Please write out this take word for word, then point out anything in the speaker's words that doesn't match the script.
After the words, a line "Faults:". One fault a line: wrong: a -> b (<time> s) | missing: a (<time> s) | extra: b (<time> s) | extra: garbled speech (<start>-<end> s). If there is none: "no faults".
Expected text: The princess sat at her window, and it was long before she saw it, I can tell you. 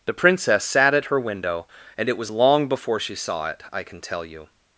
The princess sat at her window, and it was long before she saw it, I can tell you.
Faults:
no faults